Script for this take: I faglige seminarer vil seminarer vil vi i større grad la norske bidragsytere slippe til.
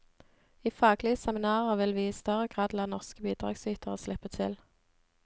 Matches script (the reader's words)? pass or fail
fail